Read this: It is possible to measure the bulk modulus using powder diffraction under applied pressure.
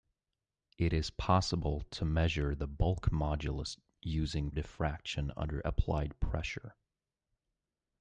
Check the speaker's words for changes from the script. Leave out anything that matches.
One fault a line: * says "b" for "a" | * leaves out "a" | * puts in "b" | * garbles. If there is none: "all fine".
* leaves out "powder"